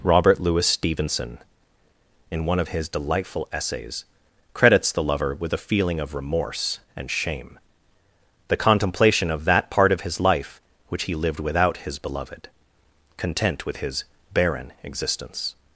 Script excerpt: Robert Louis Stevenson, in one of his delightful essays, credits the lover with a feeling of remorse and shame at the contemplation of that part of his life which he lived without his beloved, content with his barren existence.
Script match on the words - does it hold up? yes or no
no